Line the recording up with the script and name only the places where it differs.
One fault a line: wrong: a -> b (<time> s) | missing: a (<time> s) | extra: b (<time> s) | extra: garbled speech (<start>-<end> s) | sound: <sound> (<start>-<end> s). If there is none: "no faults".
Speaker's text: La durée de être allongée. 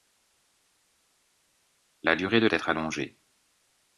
no faults